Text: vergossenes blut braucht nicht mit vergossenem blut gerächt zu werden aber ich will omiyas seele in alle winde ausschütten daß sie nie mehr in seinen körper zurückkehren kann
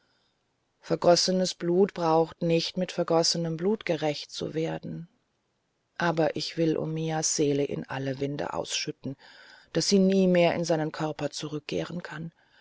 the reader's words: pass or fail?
pass